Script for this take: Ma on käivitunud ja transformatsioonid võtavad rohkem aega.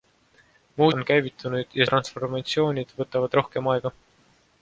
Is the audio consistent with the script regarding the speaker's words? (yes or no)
yes